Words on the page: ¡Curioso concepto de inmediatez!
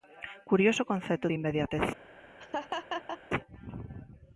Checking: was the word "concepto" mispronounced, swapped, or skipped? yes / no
no